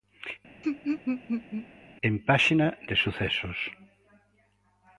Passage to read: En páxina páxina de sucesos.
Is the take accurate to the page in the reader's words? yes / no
no